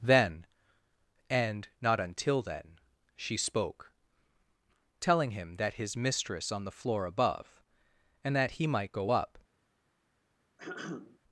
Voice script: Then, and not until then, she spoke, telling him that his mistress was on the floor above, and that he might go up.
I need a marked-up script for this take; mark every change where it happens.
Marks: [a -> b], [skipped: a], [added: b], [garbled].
Then, and not until then, she spoke, telling him that his mistress [skipped: was] on the floor above, and that he might go up.